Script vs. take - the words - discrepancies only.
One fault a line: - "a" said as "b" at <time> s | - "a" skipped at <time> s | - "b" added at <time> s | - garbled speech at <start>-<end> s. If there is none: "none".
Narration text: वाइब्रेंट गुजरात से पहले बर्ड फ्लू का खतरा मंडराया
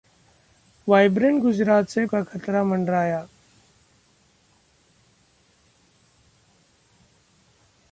- "पहले बर्ड फ्लू" skipped at 2.0 s